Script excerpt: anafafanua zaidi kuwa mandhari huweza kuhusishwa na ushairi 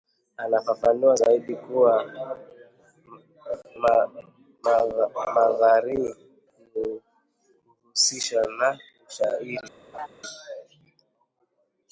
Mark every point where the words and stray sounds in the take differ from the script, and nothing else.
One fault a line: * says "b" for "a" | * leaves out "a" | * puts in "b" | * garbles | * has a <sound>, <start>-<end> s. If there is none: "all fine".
* leaves out "mandhari huweza"
* has a laugh, 9.9-10.1 s